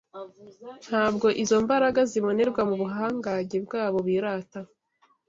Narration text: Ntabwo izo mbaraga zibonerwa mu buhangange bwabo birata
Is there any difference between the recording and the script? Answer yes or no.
no